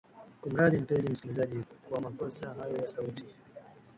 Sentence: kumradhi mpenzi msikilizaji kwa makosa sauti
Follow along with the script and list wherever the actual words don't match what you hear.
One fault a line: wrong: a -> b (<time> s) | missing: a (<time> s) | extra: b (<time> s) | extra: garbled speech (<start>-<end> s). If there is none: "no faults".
extra: hayo ya (2.5 s)